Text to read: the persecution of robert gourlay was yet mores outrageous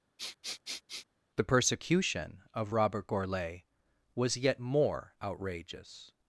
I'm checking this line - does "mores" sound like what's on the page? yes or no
no